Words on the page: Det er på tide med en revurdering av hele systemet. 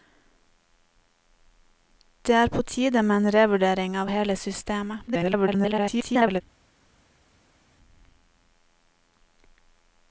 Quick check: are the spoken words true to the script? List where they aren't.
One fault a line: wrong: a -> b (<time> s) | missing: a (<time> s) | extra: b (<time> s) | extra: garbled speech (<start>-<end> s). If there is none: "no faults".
extra: garbled speech (5.1-6.4 s)